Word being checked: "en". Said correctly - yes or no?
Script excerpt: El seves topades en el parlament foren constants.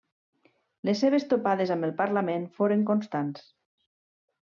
no